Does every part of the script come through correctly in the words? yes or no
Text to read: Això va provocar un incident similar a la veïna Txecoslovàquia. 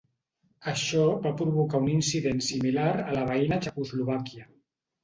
yes